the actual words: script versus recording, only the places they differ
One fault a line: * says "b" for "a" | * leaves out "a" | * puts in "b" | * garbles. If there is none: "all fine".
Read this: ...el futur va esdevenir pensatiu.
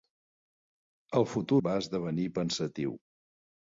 all fine